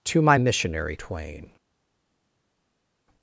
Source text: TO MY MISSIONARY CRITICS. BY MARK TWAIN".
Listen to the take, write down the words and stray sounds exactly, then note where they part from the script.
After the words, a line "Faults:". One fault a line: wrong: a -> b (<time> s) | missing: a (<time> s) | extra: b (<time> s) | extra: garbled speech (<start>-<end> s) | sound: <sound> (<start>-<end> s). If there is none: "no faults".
TO MY MISSIONARY TWAIN".
Faults:
missing: CRITICS BY MARK (0.9 s)